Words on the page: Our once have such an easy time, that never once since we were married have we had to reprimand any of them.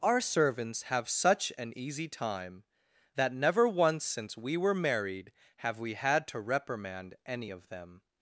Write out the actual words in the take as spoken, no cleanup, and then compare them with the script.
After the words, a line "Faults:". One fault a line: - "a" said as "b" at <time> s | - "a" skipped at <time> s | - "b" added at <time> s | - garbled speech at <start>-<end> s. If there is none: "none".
Our servants have such an easy time, that never once since we were married have we had to reprimand any of them.
Faults:
- "once" said as "servants" at 0.2 s